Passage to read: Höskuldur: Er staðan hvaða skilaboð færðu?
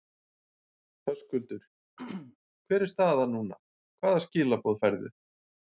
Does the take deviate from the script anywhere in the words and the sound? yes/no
yes